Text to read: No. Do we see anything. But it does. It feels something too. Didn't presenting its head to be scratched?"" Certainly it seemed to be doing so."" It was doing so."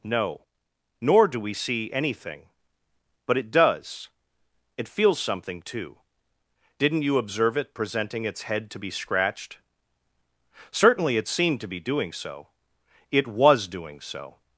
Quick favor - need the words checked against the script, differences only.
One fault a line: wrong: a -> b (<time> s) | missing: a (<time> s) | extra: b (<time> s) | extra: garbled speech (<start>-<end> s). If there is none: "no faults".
extra: Nor (1.0 s)
extra: you observe it (7.0 s)